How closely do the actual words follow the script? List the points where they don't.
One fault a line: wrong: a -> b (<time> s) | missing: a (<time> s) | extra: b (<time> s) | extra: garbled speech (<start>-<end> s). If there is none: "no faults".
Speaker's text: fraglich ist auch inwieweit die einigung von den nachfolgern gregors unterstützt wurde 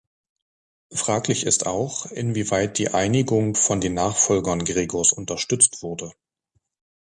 no faults